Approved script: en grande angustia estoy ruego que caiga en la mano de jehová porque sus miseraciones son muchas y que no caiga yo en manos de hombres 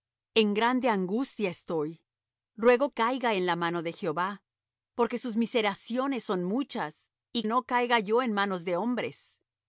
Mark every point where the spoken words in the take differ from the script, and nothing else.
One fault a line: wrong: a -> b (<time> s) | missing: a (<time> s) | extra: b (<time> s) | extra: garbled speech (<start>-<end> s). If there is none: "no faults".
missing: que (2.9 s)
missing: que (7.4 s)